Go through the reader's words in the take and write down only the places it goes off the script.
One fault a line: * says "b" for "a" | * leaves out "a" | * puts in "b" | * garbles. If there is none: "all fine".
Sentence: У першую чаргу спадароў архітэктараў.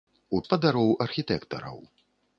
* leaves out "першую чаргу"